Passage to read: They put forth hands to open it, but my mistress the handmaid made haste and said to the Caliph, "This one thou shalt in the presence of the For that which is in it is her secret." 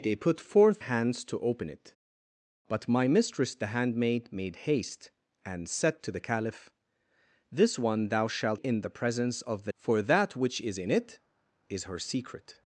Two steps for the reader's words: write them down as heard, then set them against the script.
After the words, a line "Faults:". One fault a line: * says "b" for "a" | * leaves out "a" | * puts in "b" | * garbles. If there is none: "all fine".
They put forth hands to open it, but my mistress the handmaid made haste and said to the Caliph, "This one thou shalt in the presence of the For that which is in it is her secret."
Faults:
all fine